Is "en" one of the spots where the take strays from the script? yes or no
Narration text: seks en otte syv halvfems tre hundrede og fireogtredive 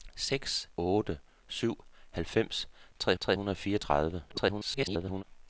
yes